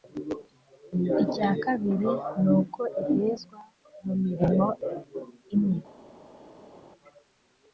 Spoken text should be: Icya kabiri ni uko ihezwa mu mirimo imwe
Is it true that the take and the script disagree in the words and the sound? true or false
false